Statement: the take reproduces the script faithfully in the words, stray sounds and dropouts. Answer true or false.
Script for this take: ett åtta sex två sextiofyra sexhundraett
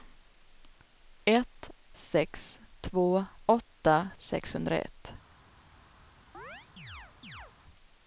false